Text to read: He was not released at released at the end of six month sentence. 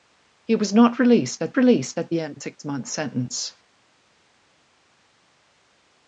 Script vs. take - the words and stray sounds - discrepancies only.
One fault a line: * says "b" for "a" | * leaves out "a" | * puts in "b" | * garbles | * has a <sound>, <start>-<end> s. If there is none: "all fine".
all fine